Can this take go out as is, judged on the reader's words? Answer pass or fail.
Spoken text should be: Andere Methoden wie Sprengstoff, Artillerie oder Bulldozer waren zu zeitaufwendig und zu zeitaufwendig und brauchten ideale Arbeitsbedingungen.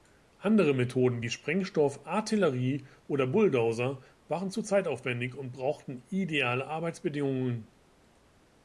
fail